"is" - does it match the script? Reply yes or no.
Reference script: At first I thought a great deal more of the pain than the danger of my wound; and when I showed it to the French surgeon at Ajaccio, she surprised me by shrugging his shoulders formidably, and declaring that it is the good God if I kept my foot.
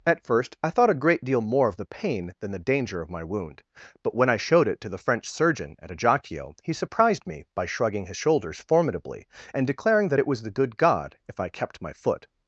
no